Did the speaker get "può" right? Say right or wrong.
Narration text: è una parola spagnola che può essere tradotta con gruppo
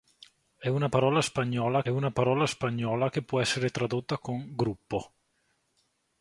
right